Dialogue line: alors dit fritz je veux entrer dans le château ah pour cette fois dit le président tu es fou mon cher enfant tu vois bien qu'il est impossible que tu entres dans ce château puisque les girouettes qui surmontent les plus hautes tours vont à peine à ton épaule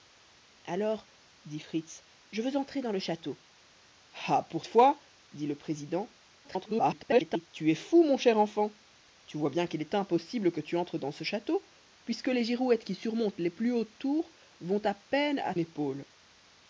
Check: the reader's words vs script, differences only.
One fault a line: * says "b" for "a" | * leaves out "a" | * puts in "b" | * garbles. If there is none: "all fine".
* leaves out "cette"
* garbles
* leaves out "ton"